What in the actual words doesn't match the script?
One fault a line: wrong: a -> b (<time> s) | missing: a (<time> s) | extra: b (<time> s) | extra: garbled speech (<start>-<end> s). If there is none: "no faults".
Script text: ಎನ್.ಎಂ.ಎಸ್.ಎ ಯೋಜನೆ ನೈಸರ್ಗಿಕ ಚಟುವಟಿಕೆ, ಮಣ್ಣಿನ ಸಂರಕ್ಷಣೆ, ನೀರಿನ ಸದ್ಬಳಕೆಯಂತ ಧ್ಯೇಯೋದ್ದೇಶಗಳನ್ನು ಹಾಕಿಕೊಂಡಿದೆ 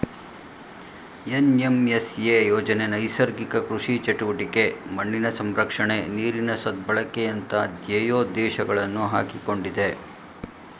extra: ಕೃಷಿ (3.7 s)